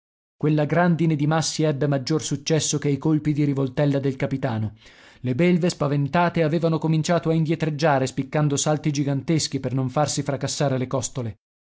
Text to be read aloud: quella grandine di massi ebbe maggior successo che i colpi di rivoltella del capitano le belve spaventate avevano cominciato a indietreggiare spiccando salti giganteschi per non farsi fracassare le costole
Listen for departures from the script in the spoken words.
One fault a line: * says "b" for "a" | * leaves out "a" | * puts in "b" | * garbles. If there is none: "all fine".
all fine